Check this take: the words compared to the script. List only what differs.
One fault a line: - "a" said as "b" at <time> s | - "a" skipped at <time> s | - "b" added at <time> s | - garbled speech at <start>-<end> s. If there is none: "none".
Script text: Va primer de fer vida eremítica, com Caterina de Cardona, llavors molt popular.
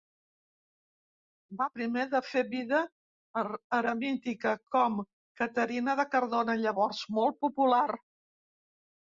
none